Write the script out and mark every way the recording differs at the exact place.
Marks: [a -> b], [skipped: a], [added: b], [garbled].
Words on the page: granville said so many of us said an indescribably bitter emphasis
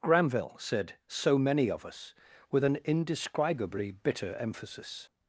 granville said so many of us [said -> with] an indescribably bitter emphasis